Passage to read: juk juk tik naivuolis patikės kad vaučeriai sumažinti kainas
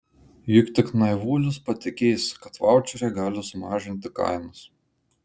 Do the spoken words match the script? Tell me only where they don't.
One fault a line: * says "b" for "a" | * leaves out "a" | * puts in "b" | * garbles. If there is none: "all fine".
* leaves out "juk"
* puts in "gali"